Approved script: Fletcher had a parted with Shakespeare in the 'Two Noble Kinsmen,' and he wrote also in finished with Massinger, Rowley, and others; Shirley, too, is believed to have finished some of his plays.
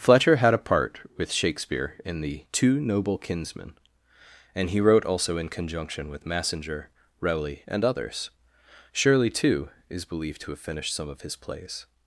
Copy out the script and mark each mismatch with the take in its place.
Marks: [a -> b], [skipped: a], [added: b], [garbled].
Fletcher had a [parted -> part] with Shakespeare in the 'Two Noble Kinsmen,' and he wrote also in [finished -> conjunction] with Massinger, Rowley, and others; Shirley, too, is believed to have finished some of his plays.